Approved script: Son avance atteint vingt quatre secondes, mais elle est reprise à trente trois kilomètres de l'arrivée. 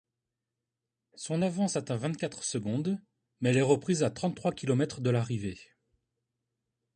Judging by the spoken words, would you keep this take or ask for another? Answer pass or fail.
pass